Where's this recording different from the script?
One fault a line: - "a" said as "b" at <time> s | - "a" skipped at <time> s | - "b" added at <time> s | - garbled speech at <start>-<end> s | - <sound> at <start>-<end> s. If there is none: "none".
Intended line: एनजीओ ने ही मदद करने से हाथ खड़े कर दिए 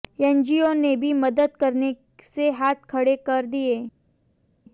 - "ही" said as "भी" at 1.0 s